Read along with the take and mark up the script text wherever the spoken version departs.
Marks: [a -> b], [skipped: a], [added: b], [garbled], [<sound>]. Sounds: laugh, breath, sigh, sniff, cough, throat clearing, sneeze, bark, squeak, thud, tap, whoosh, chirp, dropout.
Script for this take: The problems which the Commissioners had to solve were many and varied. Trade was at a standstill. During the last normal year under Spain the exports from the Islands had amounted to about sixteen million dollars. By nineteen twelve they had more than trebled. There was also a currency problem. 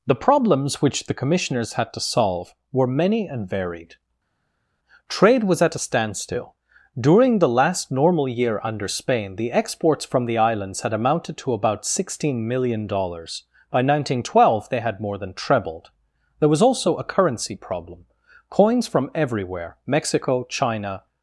The problems which the Commissioners had to solve were many and varied. Trade was at a standstill. During the last normal year under Spain the exports from the Islands had amounted to about sixteen million dollars. By nineteen twelve they had more than trebled. There was also a currency problem. [added: Coins from everywhere Mexico China]